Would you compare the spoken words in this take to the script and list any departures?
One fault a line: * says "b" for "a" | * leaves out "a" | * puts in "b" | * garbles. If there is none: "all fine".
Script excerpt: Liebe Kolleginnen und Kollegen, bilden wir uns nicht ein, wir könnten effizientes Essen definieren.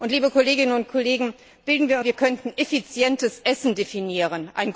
* leaves out "uns nicht ein"